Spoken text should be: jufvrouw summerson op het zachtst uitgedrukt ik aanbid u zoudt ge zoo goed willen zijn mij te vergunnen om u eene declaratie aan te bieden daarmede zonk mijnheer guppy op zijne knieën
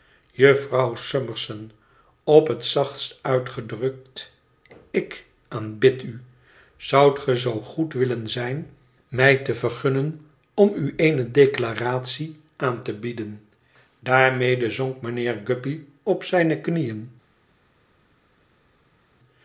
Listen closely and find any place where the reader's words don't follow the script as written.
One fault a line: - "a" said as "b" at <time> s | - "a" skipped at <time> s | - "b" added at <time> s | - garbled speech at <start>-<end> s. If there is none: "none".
none